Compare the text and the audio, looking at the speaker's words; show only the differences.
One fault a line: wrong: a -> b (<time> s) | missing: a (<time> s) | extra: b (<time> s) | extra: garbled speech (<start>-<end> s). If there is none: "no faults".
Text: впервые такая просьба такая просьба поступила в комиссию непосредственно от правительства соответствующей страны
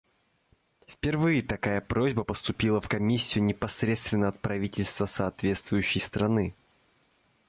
missing: такая просьба (2.2 s)